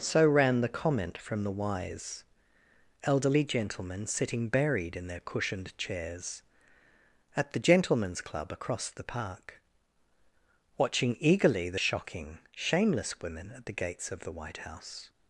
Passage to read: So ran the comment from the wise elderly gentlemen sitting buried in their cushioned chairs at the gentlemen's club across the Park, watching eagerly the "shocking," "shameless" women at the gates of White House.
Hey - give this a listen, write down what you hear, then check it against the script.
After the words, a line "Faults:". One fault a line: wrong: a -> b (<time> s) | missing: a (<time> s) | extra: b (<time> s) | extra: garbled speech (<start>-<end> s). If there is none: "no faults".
So ran the comment from the wise elderly gentlemen sitting buried in their cushioned chairs at the gentlemen's club across the Park, watching eagerly the "shocking," "shameless" women at the gates of the White House.
Faults:
extra: the (14.2 s)